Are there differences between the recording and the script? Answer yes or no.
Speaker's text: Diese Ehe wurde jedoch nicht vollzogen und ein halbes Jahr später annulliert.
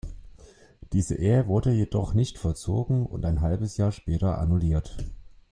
no